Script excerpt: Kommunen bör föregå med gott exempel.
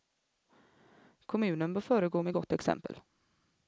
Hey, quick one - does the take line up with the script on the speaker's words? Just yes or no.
yes